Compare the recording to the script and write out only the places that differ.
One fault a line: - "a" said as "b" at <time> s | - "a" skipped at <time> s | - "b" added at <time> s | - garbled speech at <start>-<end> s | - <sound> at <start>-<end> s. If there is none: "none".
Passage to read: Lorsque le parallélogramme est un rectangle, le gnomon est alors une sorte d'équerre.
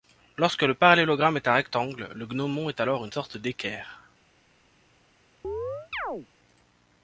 - chirp at 5.4-6.3 s